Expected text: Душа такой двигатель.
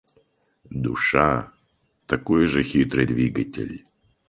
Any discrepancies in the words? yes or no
yes